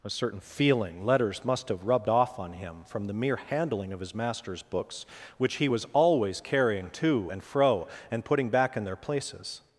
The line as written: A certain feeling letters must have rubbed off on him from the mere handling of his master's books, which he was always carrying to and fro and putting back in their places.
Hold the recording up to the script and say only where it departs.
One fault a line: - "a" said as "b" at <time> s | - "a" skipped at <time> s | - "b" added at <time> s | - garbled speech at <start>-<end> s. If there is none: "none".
none